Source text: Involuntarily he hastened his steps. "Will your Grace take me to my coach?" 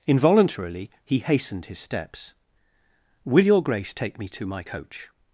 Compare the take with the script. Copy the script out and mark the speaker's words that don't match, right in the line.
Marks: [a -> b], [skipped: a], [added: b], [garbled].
Involuntarily he hastened his steps. "Will your Grace take me to my coach?"